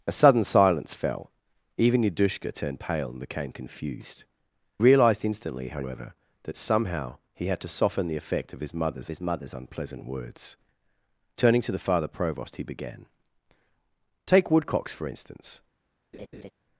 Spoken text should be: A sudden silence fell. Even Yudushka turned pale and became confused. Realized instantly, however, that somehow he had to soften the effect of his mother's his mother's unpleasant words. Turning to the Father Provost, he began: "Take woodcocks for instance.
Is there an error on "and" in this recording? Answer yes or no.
no